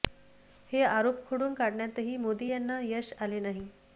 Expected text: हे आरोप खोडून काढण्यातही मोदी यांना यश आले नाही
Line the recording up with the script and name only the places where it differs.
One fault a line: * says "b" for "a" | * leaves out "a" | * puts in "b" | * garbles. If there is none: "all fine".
all fine